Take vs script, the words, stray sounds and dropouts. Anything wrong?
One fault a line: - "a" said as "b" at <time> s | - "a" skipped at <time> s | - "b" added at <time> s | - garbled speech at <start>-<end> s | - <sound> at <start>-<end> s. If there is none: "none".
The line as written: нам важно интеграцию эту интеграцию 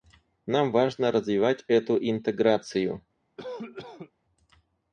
- "интеграцию" said as "развивать" at 1.1 s
- cough at 3.4-4.1 s